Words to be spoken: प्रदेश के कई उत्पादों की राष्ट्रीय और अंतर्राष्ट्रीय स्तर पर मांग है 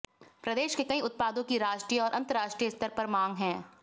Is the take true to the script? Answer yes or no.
yes